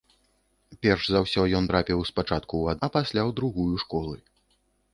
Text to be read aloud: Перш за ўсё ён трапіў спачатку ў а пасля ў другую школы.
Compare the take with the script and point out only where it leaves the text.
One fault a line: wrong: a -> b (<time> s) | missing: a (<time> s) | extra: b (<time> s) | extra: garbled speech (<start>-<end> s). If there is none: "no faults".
no faults